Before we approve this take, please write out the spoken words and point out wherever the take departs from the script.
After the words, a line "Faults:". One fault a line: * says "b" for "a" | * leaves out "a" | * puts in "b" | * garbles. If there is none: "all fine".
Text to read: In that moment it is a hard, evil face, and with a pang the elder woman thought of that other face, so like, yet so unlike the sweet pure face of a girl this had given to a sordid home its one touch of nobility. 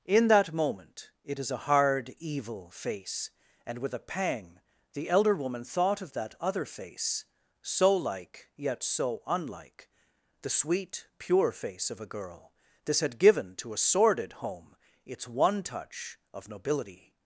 In that moment it is a hard, evil face, and with a pang the elder woman thought of that other face, so like, yet so unlike the sweet pure face of a girl this had given to a sordid home its one touch of nobility.
Faults:
all fine